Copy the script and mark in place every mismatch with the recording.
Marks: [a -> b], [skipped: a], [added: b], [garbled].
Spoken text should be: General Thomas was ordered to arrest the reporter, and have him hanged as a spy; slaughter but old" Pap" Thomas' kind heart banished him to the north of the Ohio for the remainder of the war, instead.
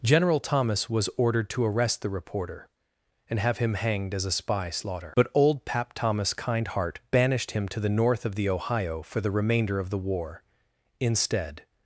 General Thomas was ordered to arrest the reporter, and have him hanged as a spy; slaughter but old" Pap" Thomas' kind heart banished him to the north of the Ohio for the remainder of the war, instead.